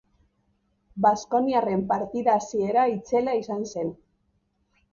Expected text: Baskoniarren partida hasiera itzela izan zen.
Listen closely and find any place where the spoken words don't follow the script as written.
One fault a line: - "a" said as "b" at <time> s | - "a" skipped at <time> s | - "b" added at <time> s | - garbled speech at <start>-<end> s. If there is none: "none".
none